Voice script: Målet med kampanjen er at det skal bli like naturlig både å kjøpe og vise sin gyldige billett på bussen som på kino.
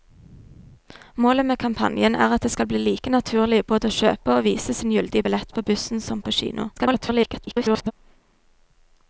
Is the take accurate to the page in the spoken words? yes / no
no